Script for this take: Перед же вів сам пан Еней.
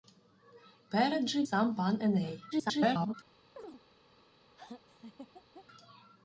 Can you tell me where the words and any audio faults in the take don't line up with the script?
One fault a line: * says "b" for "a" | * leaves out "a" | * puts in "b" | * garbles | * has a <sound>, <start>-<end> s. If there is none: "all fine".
* leaves out "вів"
* garbles
* has a chirp, 3.6-3.8 s
* has a laugh, 4.6-5.7 s